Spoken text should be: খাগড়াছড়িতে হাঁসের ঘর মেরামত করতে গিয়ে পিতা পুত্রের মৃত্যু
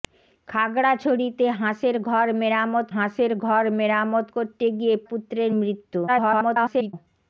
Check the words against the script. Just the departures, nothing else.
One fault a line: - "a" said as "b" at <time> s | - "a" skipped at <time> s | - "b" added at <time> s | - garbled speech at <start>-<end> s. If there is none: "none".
- "হাঁসের ঘর মেরামত" added at 2.9 s
- "পিতা" skipped at 4.9 s
- garbled speech at 6.1-6.9 s